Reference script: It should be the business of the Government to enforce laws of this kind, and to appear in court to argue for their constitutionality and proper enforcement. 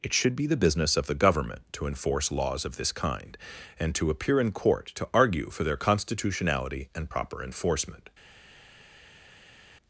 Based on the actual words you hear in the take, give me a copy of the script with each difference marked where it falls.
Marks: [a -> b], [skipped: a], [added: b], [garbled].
It should be the business of the Government to enforce laws of this kind, and to appear in court to argue for their constitutionality and proper enforcement.